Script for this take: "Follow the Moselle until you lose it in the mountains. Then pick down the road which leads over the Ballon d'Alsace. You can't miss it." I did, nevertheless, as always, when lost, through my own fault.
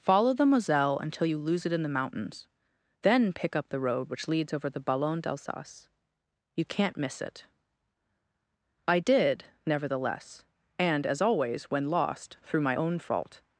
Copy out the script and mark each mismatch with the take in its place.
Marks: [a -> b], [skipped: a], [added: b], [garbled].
"Follow the Moselle until you lose it in the mountains. Then pick [down -> up] the road which leads over the Ballon d'Alsace. You can't miss it." I did, nevertheless, [added: and] as always, when lost, through my own fault.